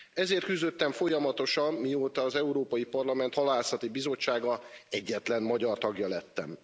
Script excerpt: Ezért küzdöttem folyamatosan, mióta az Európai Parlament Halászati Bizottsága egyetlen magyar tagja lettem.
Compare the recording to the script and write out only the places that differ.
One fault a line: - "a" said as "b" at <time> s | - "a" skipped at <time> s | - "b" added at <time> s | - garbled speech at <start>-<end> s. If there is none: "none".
none